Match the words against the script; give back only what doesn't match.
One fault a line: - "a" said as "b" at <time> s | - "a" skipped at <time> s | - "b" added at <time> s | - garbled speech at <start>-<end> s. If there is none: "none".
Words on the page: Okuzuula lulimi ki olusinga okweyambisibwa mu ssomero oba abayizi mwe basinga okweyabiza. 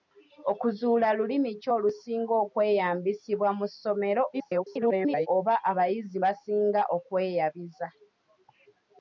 - garbled speech at 4.3-5.3 s
- "mwe" skipped at 6.2 s